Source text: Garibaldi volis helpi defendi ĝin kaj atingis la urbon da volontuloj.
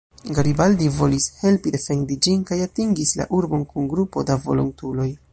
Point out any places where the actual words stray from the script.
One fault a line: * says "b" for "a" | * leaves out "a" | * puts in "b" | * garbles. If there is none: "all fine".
* puts in "kun grupo"